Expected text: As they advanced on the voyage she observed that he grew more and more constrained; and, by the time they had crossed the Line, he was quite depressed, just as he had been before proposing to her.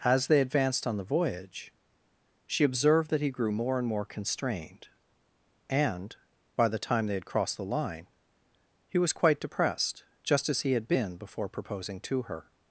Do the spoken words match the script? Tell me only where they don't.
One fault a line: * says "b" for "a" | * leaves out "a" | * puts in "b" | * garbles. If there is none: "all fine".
all fine